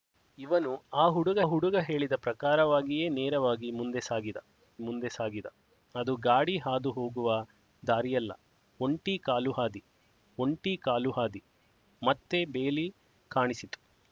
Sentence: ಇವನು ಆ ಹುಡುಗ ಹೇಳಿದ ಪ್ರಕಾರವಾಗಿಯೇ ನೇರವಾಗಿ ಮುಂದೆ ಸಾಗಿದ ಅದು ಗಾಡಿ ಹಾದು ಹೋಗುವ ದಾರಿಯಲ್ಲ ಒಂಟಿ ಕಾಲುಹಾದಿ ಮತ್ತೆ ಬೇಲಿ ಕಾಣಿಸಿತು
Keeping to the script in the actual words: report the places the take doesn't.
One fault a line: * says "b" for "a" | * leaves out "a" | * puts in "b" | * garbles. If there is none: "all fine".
* puts in "ಹುಡುಗ"
* puts in "ಮುಂದೆ ಸಾಗಿದ"
* puts in "ಒಂಟಿ ಕಾಲುಹಾದಿ"